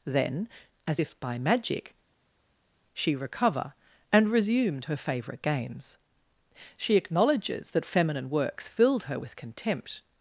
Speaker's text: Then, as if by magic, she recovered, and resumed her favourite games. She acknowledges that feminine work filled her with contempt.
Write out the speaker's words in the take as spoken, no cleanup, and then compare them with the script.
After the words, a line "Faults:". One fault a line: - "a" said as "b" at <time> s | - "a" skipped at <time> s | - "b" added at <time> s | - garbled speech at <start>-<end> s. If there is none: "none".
Then, as if by magic, she recover, and resumed her favourite games. She acknowledges that feminine works filled her with contempt.
Faults:
- "recovered" said as "recover" at 3.1 s
- "work" said as "works" at 8.3 s